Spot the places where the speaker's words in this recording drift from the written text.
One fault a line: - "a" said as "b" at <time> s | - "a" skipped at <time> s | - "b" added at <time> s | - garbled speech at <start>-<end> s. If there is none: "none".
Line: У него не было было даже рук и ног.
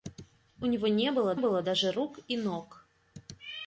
none